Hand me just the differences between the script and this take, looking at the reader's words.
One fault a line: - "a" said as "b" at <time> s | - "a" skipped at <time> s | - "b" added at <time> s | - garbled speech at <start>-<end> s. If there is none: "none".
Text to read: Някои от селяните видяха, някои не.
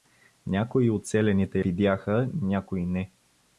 none